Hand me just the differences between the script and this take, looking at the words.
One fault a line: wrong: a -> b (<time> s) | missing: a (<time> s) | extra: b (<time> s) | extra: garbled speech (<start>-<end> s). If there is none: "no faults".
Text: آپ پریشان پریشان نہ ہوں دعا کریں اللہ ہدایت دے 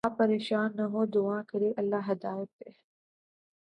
missing: پریشان (0.8 s)